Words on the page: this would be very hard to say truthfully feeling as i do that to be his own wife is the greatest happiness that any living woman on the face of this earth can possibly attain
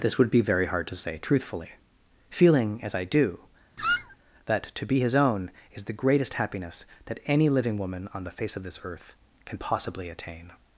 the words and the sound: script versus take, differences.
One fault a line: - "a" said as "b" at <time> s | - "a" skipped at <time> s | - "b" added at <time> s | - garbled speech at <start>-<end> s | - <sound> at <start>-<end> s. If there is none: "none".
- squeak at 3.8-4.2 s
- "wife" skipped at 5.5 s